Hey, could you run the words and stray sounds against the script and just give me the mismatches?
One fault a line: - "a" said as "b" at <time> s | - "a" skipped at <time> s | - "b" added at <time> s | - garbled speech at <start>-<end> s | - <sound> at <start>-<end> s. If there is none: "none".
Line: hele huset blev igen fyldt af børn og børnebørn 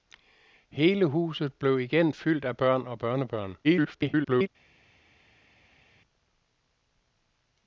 - garbled speech at 3.6-4.5 s